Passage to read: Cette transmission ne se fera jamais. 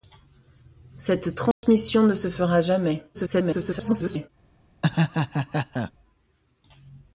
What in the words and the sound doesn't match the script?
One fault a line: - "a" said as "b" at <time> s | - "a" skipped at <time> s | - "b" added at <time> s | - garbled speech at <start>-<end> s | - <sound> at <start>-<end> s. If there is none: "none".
- dropout at 1.5-1.6 s
- garbled speech at 3.1-4.3 s
- laugh at 4.8-5.9 s